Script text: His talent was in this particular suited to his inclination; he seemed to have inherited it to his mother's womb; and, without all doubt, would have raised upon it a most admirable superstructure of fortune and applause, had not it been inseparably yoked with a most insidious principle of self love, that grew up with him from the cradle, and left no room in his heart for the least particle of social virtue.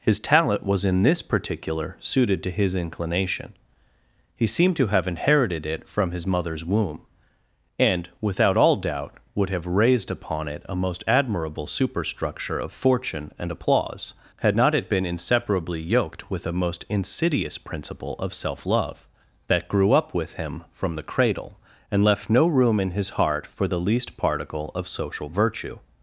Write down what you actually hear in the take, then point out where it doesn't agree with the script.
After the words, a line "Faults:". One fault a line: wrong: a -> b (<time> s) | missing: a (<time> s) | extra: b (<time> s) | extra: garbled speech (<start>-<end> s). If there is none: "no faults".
His talent was in this particular suited to his inclination; he seemed to have inherited it from his mother's womb; and, without all doubt, would have raised upon it a most admirable superstructure of fortune and applause, had not it been inseparably yoked with a most insidious principle of self love, that grew up with him from the cradle, and left no room in his heart for the least particle of social virtue.
Faults:
wrong: to -> from (5.9 s)